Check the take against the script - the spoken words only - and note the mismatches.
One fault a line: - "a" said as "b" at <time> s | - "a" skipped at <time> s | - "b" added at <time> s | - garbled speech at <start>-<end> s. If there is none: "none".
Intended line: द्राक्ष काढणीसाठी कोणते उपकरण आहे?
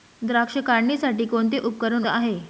none